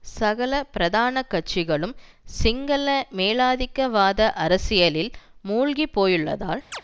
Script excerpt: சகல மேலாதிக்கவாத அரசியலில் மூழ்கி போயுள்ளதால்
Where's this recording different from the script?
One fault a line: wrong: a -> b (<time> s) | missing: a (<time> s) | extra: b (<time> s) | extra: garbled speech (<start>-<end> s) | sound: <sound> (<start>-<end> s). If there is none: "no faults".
extra: பிரதான கட்சிகளும் சிங்கள (0.7 s)
sound: chirp (6.7-6.8 s)